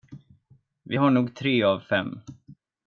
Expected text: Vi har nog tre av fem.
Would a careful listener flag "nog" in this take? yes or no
no